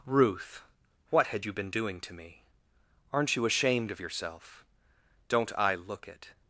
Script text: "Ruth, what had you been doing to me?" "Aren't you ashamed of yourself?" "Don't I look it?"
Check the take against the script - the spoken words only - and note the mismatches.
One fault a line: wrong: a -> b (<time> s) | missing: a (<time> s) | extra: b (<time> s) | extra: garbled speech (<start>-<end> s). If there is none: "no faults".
no faults